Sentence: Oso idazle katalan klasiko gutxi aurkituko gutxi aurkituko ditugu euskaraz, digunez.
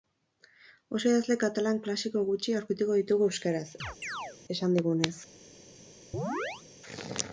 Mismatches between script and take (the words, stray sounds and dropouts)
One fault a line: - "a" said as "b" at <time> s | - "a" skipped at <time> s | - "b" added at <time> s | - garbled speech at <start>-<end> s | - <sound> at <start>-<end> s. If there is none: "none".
- "gutxi aurkituko" skipped at 3.0 s
- chirp at 3.8-4.4 s
- "esan" added at 4.6 s
- chirp at 6.1-6.6 s